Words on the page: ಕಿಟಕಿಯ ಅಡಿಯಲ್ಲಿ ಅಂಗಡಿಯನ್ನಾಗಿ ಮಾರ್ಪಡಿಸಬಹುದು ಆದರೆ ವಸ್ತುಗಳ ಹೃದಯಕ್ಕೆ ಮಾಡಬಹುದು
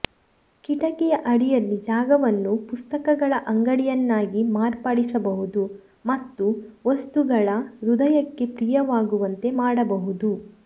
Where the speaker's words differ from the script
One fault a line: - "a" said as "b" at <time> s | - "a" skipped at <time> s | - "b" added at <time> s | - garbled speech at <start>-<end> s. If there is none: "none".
- "ಜಾಗವನ್ನು ಪುಸ್ತಕಗಳ" added at 1.8 s
- "ಆದರೆ" said as "ಮತ್ತು" at 6.0 s
- "ಪ್ರಿಯವಾಗುವಂತೆ" added at 8.6 s